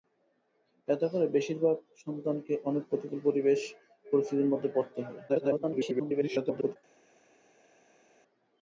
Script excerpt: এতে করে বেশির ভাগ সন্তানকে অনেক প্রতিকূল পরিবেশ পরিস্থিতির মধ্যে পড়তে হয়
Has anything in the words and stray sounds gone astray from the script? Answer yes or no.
yes